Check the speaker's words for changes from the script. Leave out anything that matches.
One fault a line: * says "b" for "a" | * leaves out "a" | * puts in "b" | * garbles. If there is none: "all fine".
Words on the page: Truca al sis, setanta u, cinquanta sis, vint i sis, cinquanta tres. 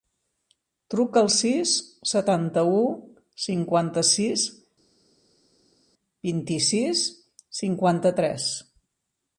all fine